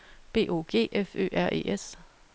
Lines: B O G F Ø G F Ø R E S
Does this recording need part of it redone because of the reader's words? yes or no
yes